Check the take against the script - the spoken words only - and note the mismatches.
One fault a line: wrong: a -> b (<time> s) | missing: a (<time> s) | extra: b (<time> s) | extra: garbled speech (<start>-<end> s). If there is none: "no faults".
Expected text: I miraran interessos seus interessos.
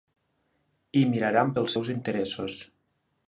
wrong: interessos -> pels (1.6 s)